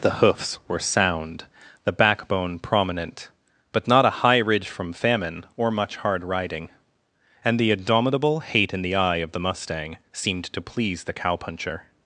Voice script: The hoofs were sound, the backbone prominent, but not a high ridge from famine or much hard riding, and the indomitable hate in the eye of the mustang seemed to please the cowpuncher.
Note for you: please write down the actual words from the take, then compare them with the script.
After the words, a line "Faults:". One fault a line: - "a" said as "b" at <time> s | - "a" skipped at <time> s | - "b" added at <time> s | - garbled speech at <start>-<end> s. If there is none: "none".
The hoofs were sound, the backbone prominent, but not a high ridge from famine or much hard riding, and the indomitable hate in the eye of the mustang seemed to please the cowpuncher.
Faults:
none